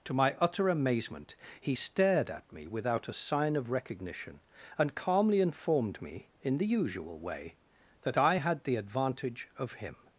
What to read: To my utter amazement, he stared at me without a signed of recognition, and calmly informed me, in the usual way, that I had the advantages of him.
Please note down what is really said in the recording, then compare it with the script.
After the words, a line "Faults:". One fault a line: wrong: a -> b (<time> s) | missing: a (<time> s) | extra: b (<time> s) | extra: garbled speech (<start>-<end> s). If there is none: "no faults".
To my utter amazement, he stared at me without a sign of recognition, and calmly informed me, in the usual way, that I had the advantage of him.
Faults:
wrong: signed -> sign (3.1 s)
wrong: advantages -> advantage (8.8 s)